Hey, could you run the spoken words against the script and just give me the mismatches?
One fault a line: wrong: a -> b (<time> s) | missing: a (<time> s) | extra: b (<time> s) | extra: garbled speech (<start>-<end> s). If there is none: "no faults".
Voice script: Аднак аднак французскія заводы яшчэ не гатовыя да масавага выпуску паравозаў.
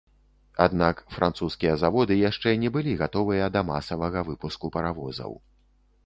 missing: аднак (1.0 s)
extra: былі (2.8 s)